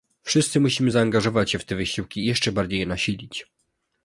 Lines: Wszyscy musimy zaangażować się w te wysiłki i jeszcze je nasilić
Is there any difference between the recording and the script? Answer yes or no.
yes